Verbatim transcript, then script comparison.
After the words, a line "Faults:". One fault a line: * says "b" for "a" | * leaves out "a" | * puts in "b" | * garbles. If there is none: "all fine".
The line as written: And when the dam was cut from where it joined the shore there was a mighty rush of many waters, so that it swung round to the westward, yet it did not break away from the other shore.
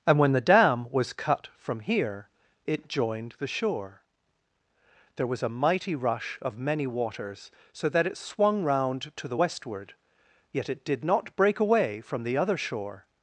And when the dam was cut from here it joined the shore there was a mighty rush of many waters, so that it swung round to the westward, yet it did not break away from the other shore.
Faults:
* says "here" for "where"